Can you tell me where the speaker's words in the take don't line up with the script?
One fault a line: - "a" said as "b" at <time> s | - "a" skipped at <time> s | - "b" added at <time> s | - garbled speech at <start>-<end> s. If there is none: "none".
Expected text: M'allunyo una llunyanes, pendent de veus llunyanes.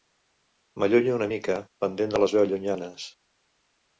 - "llunyanes" said as "mica" at 1.3 s
- "les" added at 2.2 s